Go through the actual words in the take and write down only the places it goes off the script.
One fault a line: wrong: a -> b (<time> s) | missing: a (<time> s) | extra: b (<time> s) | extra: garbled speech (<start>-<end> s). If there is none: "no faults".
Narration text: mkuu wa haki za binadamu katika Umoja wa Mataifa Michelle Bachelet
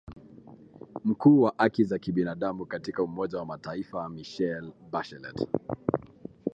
no faults